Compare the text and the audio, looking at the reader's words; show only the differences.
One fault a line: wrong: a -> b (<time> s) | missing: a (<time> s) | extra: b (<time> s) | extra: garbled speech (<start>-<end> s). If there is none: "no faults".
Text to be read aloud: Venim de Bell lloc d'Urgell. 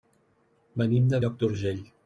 missing: Bell (1.2 s)